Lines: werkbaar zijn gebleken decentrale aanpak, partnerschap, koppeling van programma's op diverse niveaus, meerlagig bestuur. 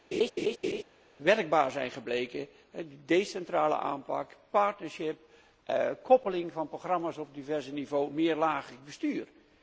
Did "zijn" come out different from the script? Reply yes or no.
no